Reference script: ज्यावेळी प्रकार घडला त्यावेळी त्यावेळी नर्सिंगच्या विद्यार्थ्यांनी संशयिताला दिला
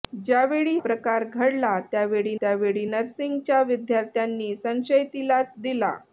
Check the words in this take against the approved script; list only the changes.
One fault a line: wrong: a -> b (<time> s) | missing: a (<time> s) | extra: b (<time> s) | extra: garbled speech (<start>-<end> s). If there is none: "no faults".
no faults